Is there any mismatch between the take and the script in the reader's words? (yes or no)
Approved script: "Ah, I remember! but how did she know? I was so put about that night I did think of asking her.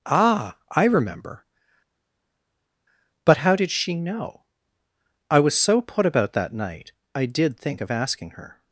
no